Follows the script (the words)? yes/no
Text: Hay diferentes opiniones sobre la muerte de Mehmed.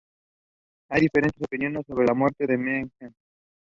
yes